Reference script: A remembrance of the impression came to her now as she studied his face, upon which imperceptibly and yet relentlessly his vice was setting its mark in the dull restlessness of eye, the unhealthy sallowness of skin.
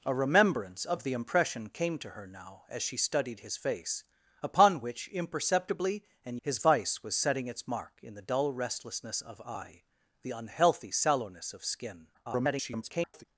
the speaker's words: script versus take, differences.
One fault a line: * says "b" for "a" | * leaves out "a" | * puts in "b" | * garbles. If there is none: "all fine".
* leaves out "yet relentlessly"
* garbles